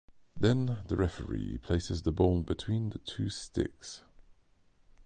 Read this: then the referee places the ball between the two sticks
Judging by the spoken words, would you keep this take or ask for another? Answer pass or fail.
pass